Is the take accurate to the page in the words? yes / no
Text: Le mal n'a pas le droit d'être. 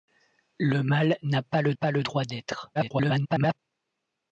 no